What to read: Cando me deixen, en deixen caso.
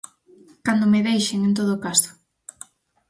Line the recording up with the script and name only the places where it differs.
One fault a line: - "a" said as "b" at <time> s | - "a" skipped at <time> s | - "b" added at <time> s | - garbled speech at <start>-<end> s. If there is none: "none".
- "deixen" said as "todo" at 1.6 s